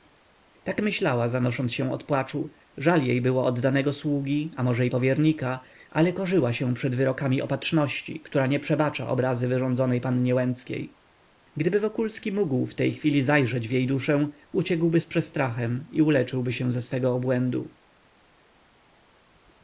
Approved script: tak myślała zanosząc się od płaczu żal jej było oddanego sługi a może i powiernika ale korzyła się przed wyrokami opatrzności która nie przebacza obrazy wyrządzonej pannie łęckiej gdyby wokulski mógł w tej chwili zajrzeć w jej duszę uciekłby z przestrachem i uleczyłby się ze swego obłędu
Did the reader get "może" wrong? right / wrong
right